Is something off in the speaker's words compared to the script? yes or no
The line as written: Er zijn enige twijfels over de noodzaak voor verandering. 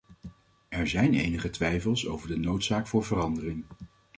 no